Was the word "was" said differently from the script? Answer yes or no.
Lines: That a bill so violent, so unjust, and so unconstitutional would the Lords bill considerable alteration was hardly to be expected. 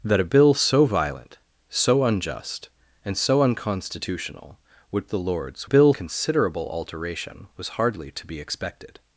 no